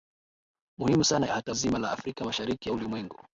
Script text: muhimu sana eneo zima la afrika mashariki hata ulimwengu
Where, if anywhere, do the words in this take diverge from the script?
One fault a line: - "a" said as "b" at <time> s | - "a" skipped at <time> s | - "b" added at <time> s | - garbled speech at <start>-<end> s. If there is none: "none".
- "eneo" said as "hata" at 1.3 s
- "hata" skipped at 2.7 s